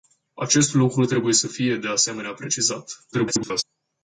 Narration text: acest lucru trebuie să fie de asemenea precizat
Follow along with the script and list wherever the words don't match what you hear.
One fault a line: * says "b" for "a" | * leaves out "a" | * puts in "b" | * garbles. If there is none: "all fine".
* garbles